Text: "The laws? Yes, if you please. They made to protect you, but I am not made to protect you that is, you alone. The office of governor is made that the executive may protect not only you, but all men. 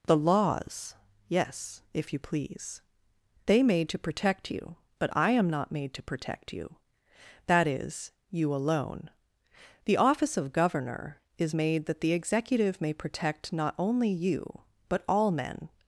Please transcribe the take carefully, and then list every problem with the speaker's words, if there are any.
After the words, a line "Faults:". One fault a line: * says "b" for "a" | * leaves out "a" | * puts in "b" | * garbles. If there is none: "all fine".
"The laws? Yes, if you please. They made to protect you, but I am not made to protect you that is, you alone. The office of governor is made that the executive may protect not only you, but all men.
Faults:
all fine